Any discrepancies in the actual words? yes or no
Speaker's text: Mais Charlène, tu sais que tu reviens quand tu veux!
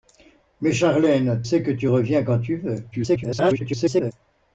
yes